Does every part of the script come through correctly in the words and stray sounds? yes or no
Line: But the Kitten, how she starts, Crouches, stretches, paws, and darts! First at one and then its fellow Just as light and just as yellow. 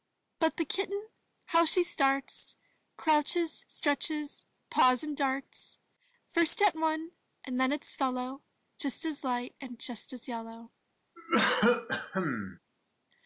no